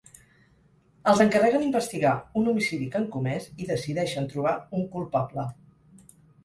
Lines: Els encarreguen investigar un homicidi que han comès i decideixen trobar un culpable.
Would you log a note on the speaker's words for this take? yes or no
no